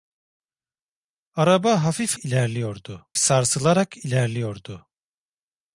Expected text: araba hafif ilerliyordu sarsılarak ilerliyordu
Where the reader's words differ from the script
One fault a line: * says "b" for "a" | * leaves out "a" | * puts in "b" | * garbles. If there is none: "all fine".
all fine